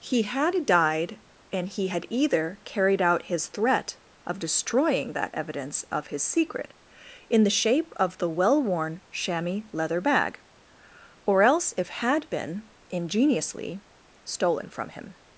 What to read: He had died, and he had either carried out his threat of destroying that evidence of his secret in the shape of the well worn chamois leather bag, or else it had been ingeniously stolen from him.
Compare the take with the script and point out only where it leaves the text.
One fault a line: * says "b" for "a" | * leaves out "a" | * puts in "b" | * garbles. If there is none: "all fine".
* says "if" for "it"